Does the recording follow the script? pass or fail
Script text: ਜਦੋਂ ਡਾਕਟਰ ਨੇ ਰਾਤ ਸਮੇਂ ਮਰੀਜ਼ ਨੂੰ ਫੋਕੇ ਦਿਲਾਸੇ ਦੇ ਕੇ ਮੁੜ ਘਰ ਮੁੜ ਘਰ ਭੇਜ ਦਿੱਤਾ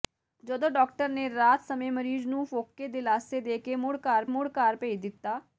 pass